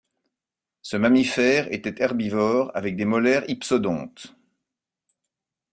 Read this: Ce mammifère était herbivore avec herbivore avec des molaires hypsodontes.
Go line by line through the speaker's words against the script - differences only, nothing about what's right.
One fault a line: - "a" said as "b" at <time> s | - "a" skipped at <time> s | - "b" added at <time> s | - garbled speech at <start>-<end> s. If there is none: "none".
- "herbivore avec" skipped at 3.0 s